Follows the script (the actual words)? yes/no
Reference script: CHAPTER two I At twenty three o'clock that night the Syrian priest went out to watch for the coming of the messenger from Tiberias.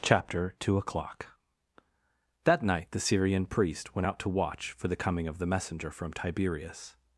no